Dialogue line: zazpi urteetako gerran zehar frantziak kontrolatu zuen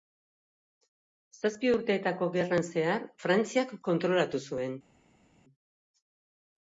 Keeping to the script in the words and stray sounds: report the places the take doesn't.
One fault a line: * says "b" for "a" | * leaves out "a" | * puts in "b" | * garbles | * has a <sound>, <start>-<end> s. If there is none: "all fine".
all fine